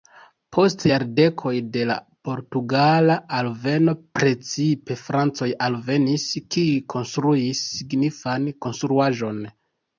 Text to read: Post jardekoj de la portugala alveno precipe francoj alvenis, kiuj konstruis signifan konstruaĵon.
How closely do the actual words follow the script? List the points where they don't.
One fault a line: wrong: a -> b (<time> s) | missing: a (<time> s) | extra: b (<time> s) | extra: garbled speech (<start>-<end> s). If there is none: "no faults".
no faults